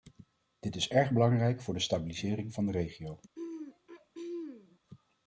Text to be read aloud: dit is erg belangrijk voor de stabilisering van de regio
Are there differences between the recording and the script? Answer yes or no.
no